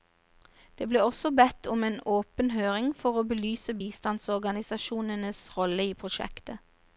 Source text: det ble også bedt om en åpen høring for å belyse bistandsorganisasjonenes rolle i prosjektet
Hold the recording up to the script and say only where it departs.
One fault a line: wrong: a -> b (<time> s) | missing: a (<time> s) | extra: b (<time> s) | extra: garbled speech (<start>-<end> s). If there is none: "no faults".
no faults